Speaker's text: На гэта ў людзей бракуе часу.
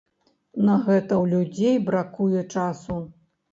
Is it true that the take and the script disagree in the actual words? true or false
false